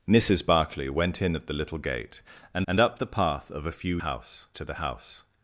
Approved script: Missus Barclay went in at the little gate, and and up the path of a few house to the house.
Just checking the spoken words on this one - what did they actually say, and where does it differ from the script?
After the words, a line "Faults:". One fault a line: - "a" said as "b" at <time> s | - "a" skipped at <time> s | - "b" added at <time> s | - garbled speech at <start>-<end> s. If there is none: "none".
Missus Barclay went in at the little gate, and and up the path of a few house to the house.
Faults:
none